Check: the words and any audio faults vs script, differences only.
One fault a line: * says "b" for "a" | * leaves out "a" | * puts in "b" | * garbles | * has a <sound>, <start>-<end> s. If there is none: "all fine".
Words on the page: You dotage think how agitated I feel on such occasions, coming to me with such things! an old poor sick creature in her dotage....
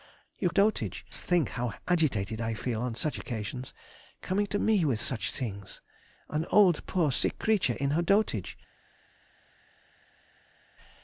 all fine